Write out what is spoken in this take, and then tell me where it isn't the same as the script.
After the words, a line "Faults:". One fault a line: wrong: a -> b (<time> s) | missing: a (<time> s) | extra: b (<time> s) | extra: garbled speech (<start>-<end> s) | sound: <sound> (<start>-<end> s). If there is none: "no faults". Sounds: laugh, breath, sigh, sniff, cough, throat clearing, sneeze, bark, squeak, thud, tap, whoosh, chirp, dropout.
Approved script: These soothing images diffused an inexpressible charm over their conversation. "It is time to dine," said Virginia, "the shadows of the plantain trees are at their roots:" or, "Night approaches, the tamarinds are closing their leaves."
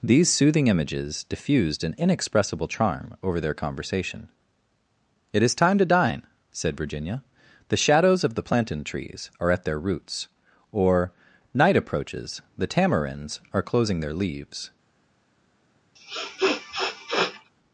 These soothing images diffused an inexpressible charm over their conversation. "It is time to dine," said Virginia, "the shadows of the plantain trees are at their roots:" or, "Night approaches, the tamarinds are closing their leaves."
Faults:
sound: sniff (16.0-17.5 s)